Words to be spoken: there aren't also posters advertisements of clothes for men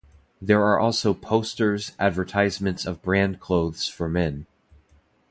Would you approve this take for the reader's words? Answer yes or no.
no